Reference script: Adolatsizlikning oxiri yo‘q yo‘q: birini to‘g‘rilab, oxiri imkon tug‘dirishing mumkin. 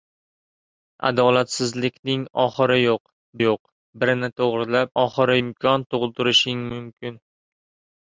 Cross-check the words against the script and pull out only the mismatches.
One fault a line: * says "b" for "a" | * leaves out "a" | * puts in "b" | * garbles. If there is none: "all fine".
all fine